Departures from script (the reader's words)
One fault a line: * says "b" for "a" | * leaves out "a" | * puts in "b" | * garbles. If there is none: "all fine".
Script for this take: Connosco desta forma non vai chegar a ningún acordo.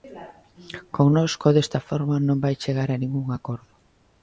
all fine